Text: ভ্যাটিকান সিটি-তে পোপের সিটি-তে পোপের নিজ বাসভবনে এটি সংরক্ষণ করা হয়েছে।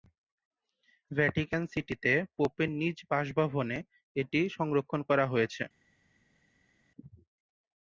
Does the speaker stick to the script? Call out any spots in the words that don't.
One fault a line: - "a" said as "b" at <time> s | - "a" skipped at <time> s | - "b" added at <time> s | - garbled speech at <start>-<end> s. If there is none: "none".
- "সিটি-তে পোপের" skipped at 2.7 s